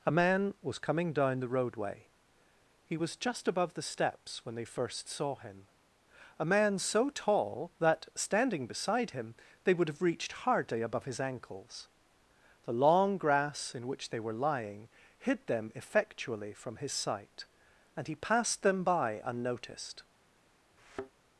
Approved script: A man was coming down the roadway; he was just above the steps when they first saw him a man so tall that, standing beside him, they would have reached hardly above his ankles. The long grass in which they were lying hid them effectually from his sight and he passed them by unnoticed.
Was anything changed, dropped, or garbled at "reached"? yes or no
no